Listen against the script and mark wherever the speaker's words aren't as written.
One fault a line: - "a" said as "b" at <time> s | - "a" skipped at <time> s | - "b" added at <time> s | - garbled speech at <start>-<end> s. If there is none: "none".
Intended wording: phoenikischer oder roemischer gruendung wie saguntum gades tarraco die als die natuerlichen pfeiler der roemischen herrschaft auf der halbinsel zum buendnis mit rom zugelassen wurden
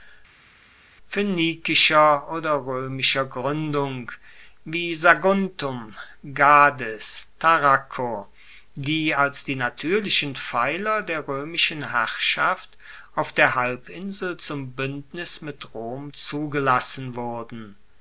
none